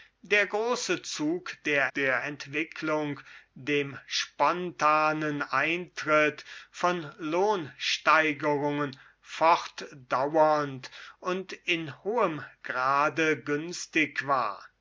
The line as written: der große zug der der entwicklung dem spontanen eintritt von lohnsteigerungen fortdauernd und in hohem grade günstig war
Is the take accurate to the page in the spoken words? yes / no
yes